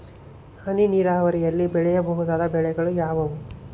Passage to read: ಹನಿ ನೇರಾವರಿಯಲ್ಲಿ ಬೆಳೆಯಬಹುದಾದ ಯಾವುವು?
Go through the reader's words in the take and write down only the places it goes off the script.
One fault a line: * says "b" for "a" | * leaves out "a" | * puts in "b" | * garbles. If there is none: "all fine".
* puts in "ಬೆಳೆಗಳು"